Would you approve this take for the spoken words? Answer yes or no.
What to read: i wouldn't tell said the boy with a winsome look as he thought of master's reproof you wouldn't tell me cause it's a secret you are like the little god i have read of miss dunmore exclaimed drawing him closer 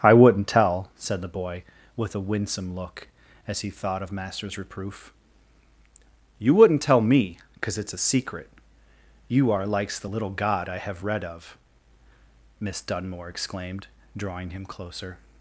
no